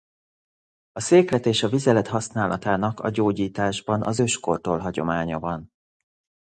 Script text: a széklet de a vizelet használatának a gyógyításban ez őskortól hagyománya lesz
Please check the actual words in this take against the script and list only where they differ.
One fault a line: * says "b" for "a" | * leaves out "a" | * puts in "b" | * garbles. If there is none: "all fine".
* says "és" for "de"
* says "az" for "ez"
* says "van" for "lesz"